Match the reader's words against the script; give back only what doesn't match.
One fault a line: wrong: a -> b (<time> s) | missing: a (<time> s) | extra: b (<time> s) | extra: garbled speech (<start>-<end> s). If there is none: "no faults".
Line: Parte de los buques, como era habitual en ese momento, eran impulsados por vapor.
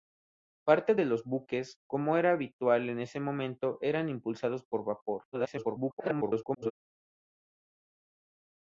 extra: garbled speech (5.3-6.7 s)